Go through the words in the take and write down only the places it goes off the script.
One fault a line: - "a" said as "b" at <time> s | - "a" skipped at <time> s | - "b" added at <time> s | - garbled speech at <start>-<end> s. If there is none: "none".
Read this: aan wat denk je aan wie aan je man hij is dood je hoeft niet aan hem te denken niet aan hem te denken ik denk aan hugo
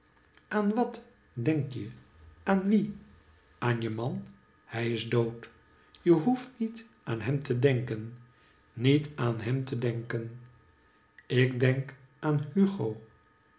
none